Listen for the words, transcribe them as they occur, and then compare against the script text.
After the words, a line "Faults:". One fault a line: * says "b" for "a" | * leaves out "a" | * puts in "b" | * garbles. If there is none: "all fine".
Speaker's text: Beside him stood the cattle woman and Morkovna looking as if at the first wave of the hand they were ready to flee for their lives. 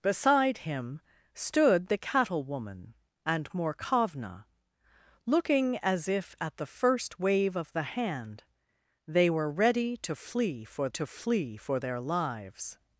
Beside him stood the cattle woman and Morkovna looking as if at the first wave of the hand they were ready to flee for to flee for their lives.
Faults:
* puts in "to flee for"